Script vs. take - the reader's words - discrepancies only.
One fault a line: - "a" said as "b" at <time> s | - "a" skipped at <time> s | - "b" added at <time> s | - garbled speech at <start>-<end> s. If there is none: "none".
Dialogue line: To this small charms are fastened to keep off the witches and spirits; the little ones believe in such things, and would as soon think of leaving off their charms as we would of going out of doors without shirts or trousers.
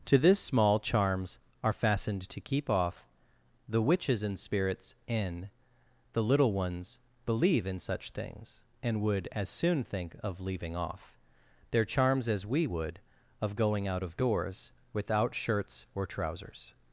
- "in" added at 5.1 s